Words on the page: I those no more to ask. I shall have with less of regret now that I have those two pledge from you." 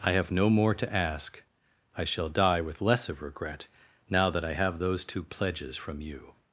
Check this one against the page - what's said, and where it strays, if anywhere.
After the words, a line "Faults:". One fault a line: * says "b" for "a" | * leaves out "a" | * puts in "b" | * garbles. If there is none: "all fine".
I have no more to ask. I shall die with less of regret now that I have those two pledges from you."
Faults:
* says "have" for "those"
* says "die" for "have"
* says "pledges" for "pledge"